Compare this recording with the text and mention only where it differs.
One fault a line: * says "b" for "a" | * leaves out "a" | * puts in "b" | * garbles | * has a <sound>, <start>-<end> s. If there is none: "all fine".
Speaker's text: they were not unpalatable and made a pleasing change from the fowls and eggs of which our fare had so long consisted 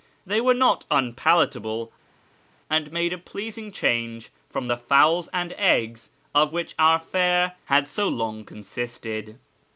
all fine